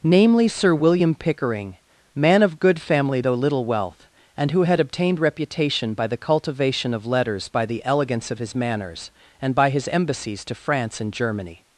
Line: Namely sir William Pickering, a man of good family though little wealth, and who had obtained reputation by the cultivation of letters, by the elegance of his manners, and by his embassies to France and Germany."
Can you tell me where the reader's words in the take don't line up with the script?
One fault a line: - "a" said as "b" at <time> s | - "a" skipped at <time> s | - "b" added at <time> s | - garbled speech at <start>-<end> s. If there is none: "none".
- "a" skipped at 1.8 s